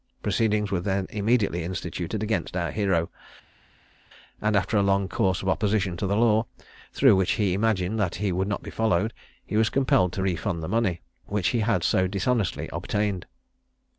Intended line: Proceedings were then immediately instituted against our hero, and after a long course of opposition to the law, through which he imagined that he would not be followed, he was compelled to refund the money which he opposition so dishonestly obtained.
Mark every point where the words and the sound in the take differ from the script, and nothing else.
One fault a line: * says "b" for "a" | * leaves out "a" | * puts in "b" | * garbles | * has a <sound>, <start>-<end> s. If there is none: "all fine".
* says "had" for "opposition"